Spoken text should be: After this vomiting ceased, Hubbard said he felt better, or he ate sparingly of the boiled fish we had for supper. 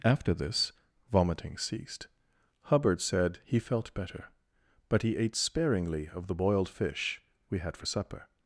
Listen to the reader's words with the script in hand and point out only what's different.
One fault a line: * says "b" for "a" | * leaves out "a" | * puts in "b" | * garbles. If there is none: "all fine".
* says "but" for "or"